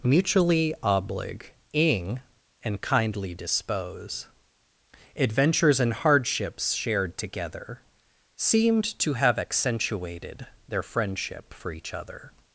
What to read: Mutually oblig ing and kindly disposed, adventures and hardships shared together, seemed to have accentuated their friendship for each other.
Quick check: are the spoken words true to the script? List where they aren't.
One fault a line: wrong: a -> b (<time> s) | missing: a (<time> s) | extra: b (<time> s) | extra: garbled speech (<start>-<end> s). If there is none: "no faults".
wrong: disposed -> dispose (3.4 s)